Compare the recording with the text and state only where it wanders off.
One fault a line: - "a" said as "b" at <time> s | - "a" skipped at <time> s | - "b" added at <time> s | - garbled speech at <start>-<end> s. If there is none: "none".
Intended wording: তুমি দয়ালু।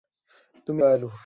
none